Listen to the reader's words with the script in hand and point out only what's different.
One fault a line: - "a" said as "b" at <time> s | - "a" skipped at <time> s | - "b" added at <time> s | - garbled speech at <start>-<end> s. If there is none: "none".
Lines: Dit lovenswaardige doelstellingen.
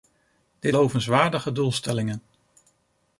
none